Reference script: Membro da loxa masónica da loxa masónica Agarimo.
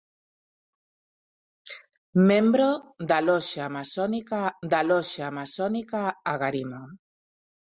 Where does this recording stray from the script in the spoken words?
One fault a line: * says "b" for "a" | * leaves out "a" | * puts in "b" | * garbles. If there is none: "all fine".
all fine